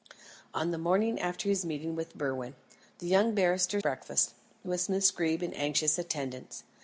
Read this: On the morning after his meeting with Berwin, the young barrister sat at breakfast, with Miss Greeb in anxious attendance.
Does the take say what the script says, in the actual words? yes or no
no